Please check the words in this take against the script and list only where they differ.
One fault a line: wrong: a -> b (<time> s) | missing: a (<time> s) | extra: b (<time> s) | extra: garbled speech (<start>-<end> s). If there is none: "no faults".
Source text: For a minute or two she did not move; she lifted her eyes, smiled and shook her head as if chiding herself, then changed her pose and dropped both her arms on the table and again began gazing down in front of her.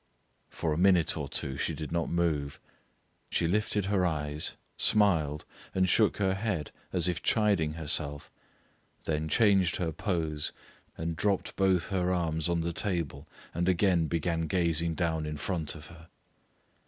no faults